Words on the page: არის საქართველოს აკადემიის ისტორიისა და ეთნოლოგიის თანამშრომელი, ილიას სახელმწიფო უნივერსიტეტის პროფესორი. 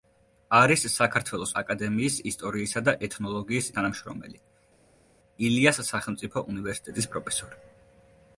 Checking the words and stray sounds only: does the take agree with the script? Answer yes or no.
yes